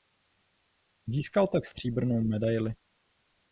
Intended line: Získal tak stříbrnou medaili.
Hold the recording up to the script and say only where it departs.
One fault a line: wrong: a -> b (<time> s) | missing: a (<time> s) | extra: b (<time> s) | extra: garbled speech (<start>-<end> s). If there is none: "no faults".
no faults